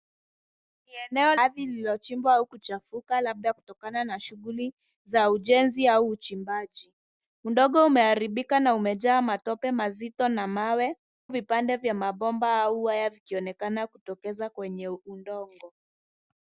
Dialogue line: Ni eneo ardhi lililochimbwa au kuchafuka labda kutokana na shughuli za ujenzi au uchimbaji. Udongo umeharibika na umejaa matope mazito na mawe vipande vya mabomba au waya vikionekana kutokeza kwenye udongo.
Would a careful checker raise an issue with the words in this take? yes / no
no